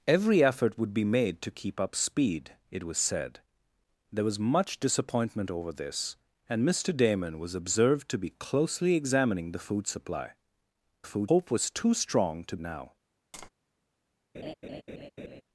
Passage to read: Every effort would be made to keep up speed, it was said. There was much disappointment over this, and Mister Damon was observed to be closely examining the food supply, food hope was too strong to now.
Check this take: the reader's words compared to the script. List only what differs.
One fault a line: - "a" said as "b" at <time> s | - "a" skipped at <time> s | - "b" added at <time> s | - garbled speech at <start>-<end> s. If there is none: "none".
none